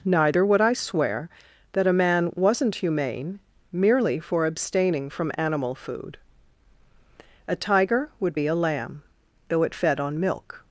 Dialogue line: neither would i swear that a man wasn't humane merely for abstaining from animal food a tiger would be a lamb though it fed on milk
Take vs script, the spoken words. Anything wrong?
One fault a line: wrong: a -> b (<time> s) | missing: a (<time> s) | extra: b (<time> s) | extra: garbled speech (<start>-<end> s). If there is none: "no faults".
no faults